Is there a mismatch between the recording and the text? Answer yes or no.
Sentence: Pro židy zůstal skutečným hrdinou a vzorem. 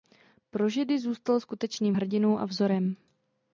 no